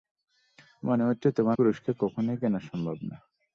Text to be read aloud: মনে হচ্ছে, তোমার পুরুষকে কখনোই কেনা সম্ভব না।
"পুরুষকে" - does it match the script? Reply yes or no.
yes